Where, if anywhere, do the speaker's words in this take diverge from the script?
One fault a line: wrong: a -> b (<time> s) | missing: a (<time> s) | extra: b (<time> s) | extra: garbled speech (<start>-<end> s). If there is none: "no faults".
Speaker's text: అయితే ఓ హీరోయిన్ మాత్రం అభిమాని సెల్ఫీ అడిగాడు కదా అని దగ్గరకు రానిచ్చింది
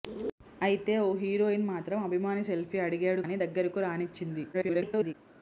missing: కదా (3.2 s)
extra: garbled speech (4.5-5.1 s)